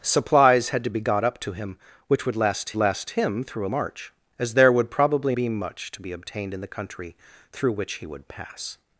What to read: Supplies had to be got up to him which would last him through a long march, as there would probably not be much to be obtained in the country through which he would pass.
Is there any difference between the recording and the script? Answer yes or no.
yes